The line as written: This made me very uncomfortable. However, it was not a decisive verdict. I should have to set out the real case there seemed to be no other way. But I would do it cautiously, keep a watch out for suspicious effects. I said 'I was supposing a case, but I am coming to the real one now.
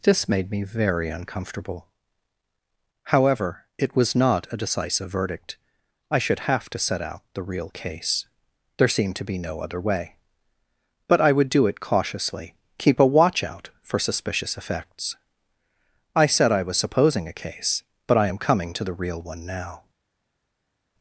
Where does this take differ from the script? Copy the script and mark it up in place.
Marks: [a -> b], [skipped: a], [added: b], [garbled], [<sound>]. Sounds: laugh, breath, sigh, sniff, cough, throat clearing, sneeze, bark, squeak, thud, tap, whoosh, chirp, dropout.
This made me very uncomfortable. However, it was not a decisive verdict. I should have to set out the real case there seemed to be no other way. But I would do it cautiously, keep a watch out for suspicious effects. I said 'I was supposing a case, but I am coming to the real one now.